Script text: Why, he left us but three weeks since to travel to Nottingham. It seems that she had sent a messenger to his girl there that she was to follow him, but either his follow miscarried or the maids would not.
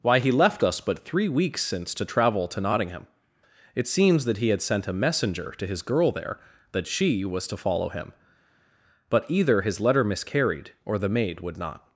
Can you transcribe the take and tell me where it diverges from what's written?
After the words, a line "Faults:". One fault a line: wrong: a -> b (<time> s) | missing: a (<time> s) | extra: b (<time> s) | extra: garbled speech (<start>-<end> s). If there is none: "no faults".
Why, he left us but three weeks since to travel to Nottingham. It seems that he had sent a messenger to his girl there that she was to follow him, but either his letter miscarried or the maid would not.
Faults:
wrong: she -> he (4.4 s)
wrong: follow -> letter (9.8 s)
wrong: maids -> maid (11.1 s)